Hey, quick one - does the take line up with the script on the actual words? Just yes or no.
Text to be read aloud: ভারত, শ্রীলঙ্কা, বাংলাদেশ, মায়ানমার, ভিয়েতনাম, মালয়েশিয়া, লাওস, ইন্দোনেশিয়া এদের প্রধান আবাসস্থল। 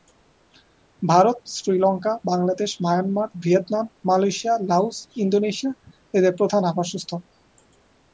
yes